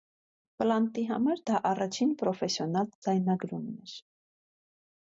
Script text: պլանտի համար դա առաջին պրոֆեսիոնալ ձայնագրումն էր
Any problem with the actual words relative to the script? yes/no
no